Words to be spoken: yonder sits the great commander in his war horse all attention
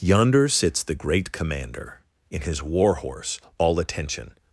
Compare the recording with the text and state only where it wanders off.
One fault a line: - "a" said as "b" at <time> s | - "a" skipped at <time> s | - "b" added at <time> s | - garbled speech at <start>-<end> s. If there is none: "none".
none